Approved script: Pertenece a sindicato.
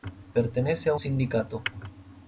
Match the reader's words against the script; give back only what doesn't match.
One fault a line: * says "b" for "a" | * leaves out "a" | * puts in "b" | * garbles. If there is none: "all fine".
all fine